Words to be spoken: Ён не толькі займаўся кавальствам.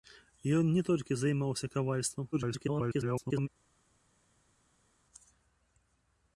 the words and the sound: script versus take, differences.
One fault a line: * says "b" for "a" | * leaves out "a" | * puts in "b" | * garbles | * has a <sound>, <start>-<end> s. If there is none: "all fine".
* garbles